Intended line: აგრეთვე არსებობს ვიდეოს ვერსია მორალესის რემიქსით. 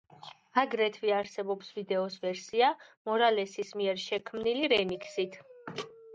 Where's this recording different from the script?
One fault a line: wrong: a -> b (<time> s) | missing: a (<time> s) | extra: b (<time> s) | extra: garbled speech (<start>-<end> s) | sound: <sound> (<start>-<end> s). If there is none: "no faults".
extra: მიერ შექმნილი (3.8 s)